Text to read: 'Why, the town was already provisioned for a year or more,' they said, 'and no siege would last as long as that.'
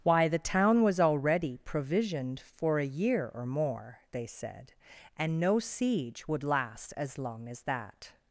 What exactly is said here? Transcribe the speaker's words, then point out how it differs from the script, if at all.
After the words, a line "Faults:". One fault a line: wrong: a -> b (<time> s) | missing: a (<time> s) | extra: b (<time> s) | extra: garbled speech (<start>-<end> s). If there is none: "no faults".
'Why, the town was already provisioned for a year or more,' they said, 'and no siege would last as long as that.'
Faults:
no faults